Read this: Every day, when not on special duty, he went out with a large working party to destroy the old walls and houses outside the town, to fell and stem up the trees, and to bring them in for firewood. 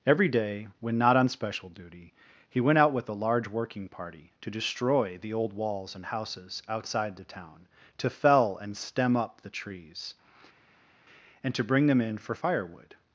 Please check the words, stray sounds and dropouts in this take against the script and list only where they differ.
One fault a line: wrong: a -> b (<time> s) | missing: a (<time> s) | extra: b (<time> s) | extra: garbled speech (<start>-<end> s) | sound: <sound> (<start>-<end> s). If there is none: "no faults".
no faults